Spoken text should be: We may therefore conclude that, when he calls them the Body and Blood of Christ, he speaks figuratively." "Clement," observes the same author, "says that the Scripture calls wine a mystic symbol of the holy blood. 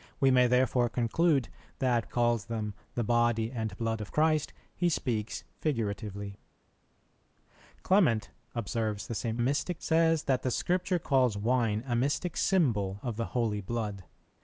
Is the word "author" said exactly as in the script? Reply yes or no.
no